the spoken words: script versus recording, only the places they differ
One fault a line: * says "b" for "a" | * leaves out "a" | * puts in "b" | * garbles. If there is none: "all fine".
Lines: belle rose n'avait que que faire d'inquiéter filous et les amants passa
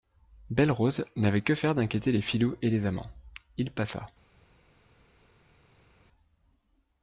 * leaves out "que"
* puts in "les"
* puts in "il"